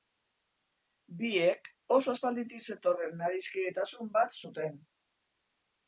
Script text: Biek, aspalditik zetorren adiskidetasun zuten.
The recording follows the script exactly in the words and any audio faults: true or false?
false